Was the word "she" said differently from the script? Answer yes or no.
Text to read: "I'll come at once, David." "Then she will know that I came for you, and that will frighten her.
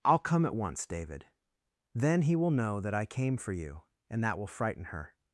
yes